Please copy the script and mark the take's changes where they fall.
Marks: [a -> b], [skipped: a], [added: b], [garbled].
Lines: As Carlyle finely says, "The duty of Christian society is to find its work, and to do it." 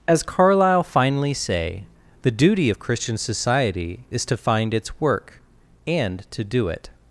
As Carlyle finely [says, -> say] "The duty of Christian society is to find its work, and to do it."